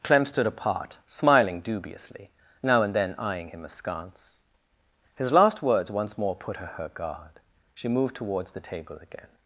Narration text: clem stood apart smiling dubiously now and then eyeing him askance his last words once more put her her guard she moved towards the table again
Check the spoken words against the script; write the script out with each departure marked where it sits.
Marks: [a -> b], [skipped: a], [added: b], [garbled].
clem stood apart smiling dubiously now and then eyeing him askance his last words once more put her her guard she moved towards the table again